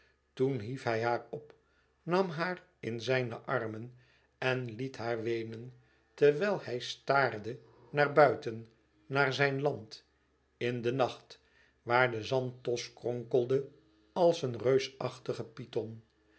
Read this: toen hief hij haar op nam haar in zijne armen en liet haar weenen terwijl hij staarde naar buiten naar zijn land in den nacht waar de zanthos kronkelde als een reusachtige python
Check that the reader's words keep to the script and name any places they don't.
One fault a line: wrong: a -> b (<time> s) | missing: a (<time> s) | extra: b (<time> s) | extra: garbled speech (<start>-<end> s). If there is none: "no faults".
no faults